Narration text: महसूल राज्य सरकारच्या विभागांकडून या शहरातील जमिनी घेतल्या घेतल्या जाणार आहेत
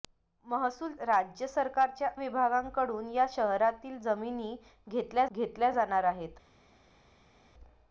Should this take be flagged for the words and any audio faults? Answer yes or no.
no